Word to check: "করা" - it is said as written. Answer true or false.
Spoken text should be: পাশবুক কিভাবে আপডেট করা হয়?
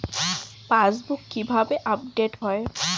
false